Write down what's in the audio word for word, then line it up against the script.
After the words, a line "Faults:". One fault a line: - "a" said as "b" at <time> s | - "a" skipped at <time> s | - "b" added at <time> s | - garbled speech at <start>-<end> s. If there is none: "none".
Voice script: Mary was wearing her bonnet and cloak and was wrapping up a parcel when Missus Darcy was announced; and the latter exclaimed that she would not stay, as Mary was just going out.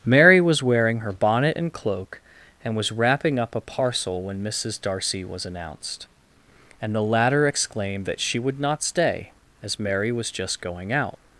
Mary was wearing her bonnet and cloak and was wrapping up a parcel when Missus Darcy was announced; and the latter exclaimed that she would not stay, as Mary was just going out.
Faults:
none